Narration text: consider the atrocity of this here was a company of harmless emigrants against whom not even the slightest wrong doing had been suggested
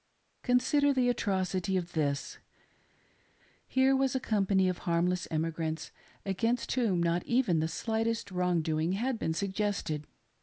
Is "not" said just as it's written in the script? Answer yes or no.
yes